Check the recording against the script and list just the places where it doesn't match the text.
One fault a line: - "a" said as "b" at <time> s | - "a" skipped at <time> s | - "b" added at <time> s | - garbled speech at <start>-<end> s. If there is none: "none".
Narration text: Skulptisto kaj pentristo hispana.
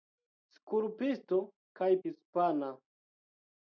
- "pentristo" skipped at 1.9 s